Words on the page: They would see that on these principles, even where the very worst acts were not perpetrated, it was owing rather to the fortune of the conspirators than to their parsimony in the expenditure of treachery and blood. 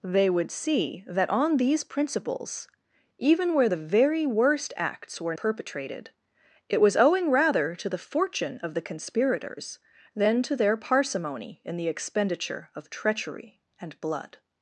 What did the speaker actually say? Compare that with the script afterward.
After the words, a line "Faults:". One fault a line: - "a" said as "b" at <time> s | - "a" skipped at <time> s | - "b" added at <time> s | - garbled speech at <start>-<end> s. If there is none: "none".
They would see that on these principles, even where the very worst acts were perpetrated, it was owing rather to the fortune of the conspirators than to their parsimony in the expenditure of treachery and blood.
Faults:
- "not" skipped at 5.3 s